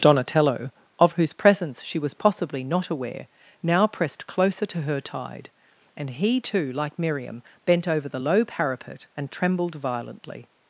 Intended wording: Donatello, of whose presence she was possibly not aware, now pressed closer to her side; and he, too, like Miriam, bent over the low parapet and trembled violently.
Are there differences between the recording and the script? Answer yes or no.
yes